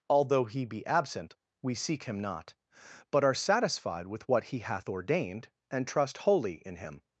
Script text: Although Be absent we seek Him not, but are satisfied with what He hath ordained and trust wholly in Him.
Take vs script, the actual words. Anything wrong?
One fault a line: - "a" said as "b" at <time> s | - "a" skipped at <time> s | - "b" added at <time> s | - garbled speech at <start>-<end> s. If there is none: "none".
- "He" added at 0.5 s